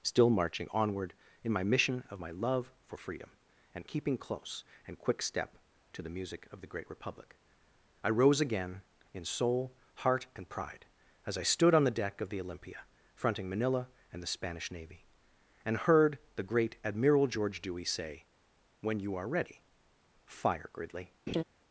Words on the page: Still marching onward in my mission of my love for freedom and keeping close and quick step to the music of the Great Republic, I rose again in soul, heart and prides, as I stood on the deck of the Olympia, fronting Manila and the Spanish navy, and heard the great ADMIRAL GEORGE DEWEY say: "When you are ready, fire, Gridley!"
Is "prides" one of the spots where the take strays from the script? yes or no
yes